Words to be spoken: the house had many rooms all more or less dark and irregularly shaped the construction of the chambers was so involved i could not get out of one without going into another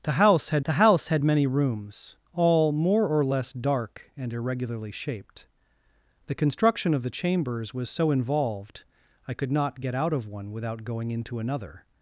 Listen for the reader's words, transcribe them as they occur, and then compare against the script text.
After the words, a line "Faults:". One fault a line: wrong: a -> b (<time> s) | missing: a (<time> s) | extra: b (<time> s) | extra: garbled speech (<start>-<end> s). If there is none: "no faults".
the house had the house had many rooms all more or less dark and irregularly shaped the construction of the chambers was so involved i could not get out of one without going into another
Faults:
extra: the house had (0.6 s)